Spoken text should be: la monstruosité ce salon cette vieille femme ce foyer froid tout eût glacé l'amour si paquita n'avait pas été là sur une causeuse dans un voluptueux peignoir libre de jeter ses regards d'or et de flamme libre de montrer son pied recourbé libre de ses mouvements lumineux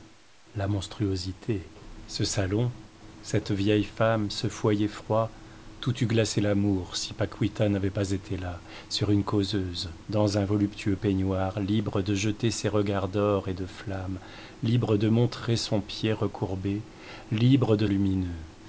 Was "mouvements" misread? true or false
true